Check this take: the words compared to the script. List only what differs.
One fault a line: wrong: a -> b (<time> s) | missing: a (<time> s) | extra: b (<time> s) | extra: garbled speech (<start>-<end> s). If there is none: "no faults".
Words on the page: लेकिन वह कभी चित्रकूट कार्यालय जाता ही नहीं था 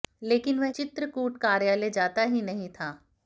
missing: कभी (0.7 s)